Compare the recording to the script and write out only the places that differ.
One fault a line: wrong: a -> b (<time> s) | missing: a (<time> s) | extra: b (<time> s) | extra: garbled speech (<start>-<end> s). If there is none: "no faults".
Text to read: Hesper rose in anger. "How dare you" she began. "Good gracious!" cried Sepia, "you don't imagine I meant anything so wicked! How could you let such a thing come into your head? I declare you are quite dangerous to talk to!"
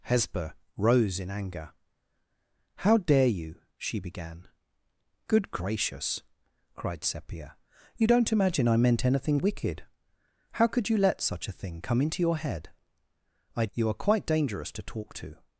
missing: so (9.4 s)
missing: declare (13.7 s)